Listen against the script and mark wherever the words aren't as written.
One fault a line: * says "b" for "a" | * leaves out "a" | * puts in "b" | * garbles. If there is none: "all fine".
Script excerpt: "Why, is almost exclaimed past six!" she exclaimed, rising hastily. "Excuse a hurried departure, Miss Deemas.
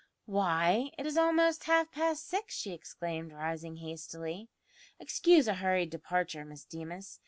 * puts in "it"
* says "half" for "exclaimed"